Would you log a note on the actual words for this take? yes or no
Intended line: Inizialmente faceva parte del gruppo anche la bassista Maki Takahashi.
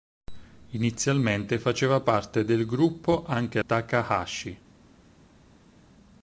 yes